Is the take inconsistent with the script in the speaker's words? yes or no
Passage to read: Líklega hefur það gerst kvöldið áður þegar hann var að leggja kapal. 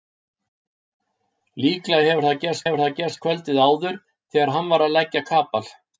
yes